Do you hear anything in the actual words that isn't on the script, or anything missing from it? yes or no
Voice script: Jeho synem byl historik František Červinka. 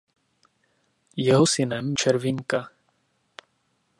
yes